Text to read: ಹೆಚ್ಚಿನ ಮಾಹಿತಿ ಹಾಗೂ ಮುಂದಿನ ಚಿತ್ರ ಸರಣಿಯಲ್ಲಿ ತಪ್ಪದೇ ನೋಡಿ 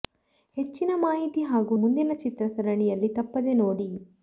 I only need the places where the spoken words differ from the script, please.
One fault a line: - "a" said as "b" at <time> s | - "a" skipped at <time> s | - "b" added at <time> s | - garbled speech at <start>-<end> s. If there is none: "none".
none